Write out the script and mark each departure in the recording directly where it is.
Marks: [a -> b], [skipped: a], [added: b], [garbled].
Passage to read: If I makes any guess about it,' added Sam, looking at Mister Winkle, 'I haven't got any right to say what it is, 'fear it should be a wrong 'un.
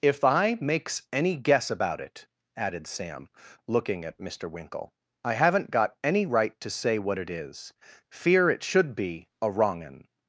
If I makes any guess about it,' added Sam, looking at Mister Winkle, 'I haven't got any right to say what it is, 'fear it should be a wrong 'un.